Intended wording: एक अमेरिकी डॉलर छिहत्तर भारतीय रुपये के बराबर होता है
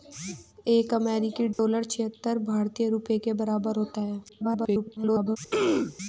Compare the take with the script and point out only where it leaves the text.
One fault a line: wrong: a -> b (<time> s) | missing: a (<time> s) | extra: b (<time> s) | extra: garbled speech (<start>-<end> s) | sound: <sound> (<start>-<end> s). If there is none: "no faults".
sound: dropout (1.5-1.6 s)
extra: garbled speech (4.3-5.4 s)
sound: throat clearing (5.5-6.0 s)